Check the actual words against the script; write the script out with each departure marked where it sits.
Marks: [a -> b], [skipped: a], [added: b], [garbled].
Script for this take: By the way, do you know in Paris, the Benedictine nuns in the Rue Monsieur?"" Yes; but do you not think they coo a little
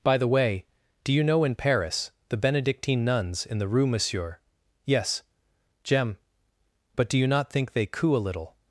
By the way, do you know in Paris, the Benedictine nuns in the Rue Monsieur?"" Yes; [added: jem] but do you not think they coo a little